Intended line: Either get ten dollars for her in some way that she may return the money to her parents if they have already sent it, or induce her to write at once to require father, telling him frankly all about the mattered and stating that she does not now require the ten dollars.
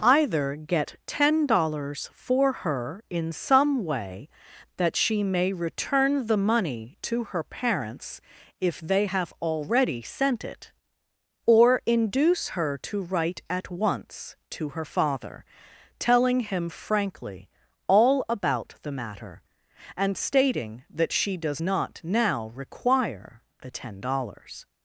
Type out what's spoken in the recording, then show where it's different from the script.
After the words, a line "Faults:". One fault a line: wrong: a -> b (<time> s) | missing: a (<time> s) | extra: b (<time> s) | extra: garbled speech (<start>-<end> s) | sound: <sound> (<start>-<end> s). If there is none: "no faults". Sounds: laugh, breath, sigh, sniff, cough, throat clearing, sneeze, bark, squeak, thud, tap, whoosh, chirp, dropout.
Either get ten dollars for her in some way that she may return the money to her parents if they have already sent it, or induce her to write at once to her father, telling him frankly all about the matter and stating that she does not now require the ten dollars.
Faults:
wrong: require -> her (14.7 s)
wrong: mattered -> matter (18.9 s)